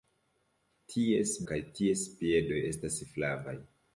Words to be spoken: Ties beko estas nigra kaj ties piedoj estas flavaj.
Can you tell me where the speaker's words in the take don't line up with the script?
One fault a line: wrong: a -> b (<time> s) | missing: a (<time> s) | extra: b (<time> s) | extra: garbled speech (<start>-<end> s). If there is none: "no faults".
missing: beko estas nigra (1.3 s)